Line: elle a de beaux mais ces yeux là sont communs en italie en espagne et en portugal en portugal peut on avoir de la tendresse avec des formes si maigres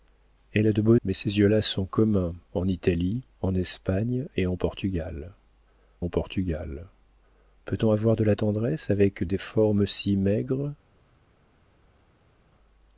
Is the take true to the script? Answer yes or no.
yes